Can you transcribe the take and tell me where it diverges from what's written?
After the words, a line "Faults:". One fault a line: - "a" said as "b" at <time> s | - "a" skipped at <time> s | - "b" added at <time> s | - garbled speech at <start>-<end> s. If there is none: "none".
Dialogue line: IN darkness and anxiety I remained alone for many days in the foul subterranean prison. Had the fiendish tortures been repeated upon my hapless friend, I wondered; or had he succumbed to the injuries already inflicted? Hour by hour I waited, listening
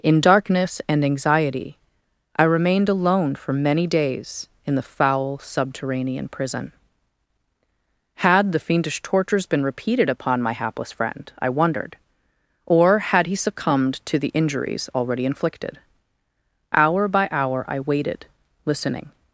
IN darkness and anxiety I remained alone for many days in the foul subterranean prison. Had the fiendish tortures been repeated upon my hapless friend, I wondered; or had he succumbed to the injuries already inflicted? Hour by hour I waited, listening
Faults:
none